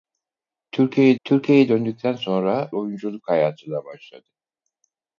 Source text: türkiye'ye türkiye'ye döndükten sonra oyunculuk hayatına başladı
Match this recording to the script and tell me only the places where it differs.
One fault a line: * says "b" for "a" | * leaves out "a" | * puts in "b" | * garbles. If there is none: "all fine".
all fine